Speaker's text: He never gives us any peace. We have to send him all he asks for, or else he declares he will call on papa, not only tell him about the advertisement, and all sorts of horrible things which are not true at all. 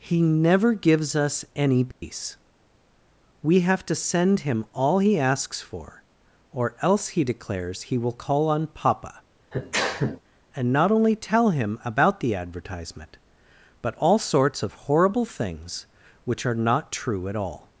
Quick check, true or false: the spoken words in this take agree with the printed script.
false